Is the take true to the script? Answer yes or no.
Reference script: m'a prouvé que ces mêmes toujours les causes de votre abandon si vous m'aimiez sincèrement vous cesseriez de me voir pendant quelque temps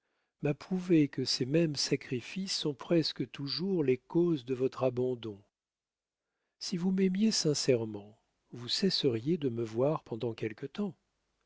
no